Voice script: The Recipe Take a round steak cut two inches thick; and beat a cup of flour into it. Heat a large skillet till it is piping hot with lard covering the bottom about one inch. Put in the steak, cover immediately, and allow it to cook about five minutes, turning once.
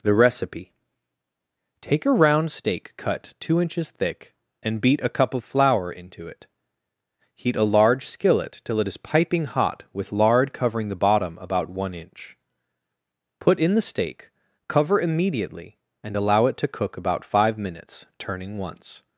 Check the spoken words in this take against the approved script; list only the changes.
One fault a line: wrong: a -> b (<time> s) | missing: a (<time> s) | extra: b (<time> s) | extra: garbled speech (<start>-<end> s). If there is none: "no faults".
no faults